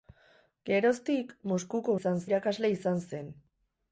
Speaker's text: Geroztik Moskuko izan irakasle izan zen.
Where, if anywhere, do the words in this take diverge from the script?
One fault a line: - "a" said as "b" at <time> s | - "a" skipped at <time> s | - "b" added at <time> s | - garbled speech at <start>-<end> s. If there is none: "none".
none